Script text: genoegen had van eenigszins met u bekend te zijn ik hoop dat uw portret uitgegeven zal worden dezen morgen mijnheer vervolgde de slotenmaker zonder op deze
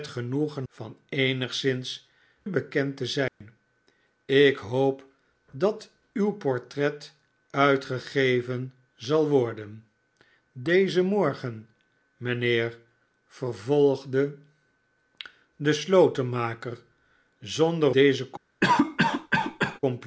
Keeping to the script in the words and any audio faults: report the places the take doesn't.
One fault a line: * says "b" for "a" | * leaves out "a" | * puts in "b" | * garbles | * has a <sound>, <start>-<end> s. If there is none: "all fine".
* leaves out "had"
* leaves out "met u"
* has a dropout, 3.3-3.4 s
* leaves out "op"
* has a cough, 18.6-19.8 s